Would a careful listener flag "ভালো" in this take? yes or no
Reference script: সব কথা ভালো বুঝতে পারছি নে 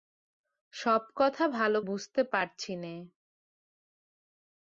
no